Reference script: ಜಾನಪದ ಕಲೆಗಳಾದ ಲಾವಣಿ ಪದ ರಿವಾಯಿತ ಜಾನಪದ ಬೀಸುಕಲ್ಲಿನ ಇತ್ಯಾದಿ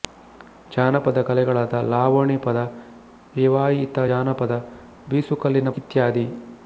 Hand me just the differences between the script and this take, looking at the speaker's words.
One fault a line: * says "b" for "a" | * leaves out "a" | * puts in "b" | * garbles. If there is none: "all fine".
all fine